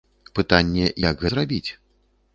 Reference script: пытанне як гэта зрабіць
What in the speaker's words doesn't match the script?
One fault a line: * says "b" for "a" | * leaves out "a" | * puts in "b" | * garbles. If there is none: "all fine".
* leaves out "гэта"